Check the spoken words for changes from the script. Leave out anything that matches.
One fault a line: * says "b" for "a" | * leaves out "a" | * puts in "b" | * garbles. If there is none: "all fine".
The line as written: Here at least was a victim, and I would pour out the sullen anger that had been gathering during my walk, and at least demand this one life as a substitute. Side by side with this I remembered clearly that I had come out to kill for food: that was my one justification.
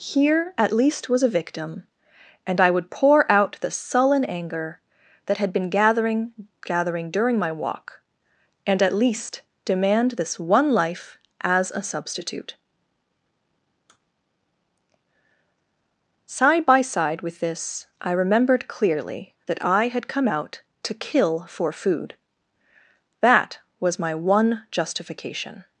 * puts in "gathering"